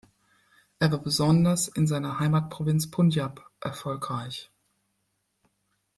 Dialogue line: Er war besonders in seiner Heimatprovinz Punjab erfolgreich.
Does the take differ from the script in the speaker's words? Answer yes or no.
no